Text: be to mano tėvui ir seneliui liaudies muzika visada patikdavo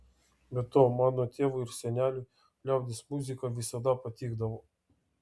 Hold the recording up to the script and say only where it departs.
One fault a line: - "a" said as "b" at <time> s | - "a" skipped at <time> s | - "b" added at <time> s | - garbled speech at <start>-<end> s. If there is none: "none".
none